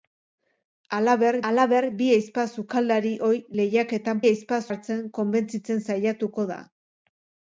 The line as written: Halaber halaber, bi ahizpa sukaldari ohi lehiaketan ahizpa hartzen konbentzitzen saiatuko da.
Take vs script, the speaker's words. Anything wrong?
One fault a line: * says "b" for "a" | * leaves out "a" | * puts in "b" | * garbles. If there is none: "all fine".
all fine